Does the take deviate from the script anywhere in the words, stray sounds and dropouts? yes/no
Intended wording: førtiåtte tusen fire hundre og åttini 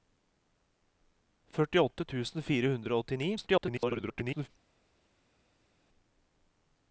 yes